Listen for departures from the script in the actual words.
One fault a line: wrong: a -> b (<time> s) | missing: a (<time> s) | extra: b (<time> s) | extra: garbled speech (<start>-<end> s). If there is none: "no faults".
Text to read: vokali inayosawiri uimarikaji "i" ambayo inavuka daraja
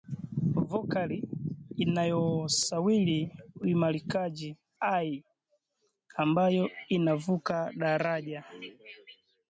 no faults